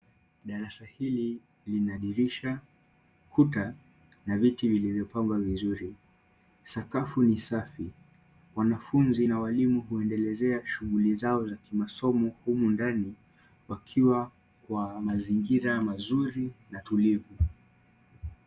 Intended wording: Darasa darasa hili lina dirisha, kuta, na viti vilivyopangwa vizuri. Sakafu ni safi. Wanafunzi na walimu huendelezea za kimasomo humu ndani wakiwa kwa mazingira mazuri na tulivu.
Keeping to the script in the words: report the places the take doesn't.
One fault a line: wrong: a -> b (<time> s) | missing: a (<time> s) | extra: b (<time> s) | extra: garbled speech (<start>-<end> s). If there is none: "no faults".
missing: darasa (0.8 s)
extra: shughuli zao (10.7 s)